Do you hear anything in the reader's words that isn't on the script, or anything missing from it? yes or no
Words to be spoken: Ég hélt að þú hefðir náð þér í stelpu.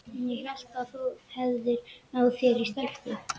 no